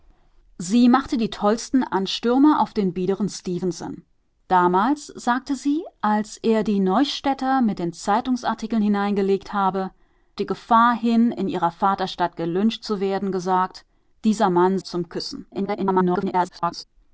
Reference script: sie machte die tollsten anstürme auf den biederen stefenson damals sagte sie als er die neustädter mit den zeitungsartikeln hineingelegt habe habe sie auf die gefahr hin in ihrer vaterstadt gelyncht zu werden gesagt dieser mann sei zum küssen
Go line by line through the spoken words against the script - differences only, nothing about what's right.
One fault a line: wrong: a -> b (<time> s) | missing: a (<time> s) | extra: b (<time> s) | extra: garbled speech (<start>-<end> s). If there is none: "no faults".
missing: habe sie auf (9.9 s)
missing: sei (14.8 s)
extra: garbled speech (15.5-16.8 s)